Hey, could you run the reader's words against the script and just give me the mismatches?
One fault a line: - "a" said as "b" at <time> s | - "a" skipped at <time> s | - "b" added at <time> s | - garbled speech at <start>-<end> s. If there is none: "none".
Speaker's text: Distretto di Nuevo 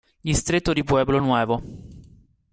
- "Pueblo" added at 0.8 s